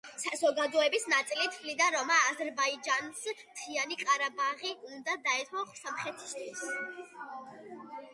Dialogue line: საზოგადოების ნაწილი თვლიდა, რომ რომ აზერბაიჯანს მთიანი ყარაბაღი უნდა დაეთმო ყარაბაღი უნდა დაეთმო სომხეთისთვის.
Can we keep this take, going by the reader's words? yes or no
no